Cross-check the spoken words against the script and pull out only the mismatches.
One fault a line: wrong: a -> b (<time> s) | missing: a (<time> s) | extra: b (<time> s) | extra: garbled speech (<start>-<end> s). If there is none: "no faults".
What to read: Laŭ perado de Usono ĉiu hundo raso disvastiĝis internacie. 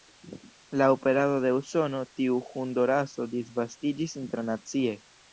wrong: ĉiu -> tiu (2.2 s)